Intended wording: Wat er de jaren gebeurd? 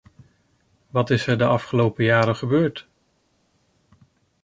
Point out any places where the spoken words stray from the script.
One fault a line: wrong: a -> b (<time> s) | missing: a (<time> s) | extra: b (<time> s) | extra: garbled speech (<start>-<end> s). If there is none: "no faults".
extra: is (1.1 s)
extra: afgelopen (1.4 s)